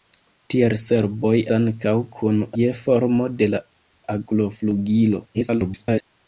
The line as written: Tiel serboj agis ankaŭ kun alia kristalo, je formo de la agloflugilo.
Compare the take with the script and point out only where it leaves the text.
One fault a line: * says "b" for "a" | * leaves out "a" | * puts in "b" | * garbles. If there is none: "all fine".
* leaves out "agis"
* leaves out "alia kristalo"
* garbles